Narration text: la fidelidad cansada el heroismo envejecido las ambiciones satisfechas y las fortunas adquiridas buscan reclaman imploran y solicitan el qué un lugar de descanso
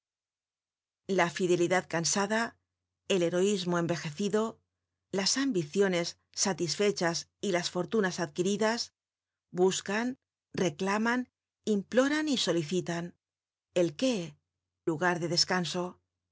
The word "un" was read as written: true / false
false